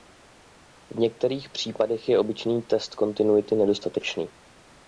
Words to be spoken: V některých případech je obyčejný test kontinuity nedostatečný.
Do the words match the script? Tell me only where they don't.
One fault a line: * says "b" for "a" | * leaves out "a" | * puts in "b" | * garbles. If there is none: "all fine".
all fine